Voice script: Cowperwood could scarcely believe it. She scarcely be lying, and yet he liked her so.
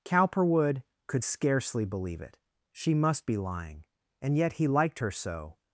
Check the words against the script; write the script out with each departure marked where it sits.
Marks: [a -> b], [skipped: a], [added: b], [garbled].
Cowperwood could scarcely believe it. She [scarcely -> must] be lying, and yet he liked her so.